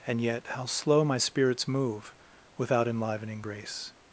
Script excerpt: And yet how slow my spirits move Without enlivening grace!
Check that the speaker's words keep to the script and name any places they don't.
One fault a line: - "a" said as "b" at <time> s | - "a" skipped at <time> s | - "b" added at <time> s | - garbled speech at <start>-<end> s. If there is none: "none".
none